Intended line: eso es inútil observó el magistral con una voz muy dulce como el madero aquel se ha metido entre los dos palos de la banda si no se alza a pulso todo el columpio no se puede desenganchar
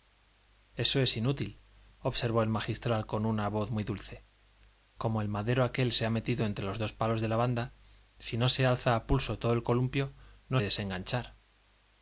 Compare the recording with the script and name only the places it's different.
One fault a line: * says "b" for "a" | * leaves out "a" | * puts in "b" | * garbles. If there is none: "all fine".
* leaves out "se puede"